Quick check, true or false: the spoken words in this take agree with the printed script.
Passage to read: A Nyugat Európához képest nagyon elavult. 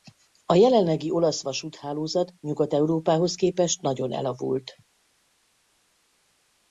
false